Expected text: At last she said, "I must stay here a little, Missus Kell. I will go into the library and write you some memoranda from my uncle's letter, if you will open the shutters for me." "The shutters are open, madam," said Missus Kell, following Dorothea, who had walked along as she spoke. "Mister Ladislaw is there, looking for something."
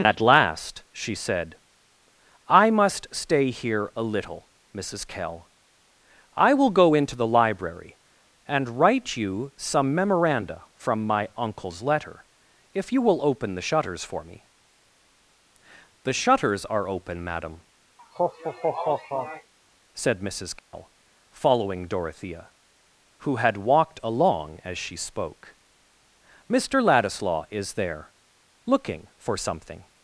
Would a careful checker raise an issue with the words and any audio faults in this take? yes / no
yes